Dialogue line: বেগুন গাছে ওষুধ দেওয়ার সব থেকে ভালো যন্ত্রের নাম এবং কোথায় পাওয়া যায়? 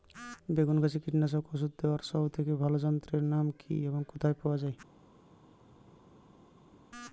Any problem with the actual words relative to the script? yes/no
yes